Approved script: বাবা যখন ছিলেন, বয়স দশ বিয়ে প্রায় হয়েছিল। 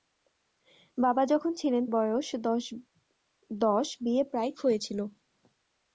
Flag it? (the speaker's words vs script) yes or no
no